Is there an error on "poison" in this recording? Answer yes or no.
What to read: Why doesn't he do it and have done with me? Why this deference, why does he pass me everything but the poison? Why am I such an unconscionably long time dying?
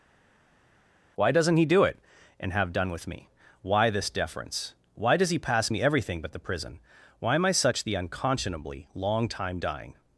yes